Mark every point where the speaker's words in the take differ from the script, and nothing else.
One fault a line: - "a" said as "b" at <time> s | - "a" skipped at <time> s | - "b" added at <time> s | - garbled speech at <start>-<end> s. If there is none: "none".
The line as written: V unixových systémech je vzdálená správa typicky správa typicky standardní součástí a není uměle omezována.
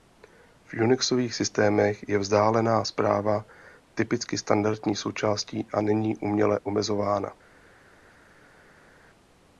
- "správa typicky" skipped at 4.4 s